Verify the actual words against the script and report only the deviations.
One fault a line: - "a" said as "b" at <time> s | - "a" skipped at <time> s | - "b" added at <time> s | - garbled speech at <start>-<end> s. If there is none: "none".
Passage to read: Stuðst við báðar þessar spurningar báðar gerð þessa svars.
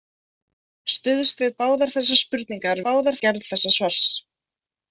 none